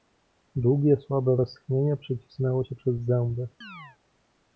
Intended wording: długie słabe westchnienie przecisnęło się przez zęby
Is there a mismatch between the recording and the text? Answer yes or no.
no